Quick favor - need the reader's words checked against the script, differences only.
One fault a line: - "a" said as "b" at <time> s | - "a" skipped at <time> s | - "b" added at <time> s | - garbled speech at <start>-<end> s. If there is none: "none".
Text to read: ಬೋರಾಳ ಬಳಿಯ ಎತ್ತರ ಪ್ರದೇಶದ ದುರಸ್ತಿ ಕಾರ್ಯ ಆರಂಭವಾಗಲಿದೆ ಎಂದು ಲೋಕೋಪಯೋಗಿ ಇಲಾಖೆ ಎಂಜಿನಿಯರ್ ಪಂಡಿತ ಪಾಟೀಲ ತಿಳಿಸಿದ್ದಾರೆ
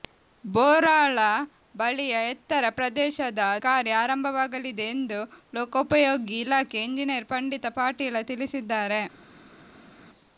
- "ದುರಸ್ತಿ" skipped at 3.4 s